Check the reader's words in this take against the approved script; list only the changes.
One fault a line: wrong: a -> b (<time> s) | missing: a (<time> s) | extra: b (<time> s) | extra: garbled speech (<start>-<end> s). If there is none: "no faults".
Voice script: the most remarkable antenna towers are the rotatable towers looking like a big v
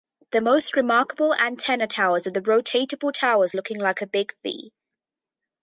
no faults